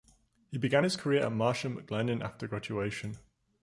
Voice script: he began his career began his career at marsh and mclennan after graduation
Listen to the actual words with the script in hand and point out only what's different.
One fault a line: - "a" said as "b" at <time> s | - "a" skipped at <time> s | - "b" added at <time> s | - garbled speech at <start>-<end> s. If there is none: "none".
- "began his career" skipped at 1.2 s